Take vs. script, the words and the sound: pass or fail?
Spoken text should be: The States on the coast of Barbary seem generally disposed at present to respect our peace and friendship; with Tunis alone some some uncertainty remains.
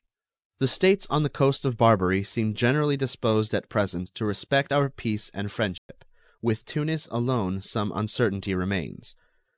fail